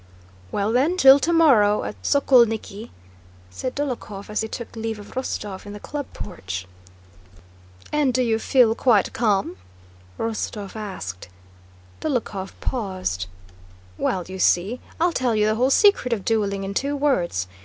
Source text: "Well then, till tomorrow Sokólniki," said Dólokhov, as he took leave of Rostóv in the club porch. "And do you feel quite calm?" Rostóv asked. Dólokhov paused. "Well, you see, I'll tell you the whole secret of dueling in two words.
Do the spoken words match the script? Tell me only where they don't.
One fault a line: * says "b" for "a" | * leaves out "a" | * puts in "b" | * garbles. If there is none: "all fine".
* puts in "at"